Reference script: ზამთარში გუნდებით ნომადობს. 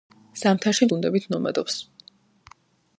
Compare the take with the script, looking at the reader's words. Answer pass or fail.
pass